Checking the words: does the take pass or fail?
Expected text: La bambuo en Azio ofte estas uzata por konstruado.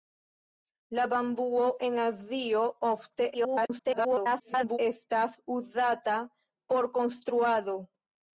fail